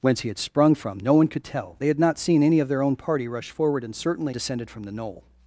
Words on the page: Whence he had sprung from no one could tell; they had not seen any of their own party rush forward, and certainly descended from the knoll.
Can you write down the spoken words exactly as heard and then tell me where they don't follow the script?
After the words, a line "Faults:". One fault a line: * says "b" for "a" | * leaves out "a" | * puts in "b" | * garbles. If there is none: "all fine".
Whence he had sprung from no one could tell; they had not seen any of their own party rush forward, and certainly descended from the knoll.
Faults:
all fine